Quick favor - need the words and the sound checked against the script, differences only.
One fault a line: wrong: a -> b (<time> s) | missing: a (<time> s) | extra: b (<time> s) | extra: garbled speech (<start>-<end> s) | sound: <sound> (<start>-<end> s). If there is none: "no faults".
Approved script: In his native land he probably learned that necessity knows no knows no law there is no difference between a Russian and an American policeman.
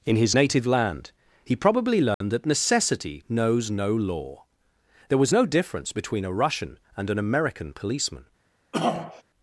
sound: dropout (2.1-2.2 s)
missing: knows no (3.9 s)
wrong: is -> was (5.2 s)
sound: throat clearing (8.7-9.2 s)